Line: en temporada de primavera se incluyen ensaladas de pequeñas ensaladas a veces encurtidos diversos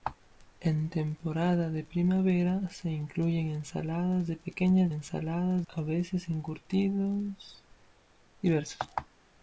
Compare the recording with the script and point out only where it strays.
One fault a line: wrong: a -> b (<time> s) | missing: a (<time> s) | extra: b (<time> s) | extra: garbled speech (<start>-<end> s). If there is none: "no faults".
no faults